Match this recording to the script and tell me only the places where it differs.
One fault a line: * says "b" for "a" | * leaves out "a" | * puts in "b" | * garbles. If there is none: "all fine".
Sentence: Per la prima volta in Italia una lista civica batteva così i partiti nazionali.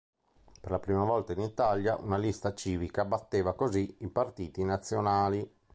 all fine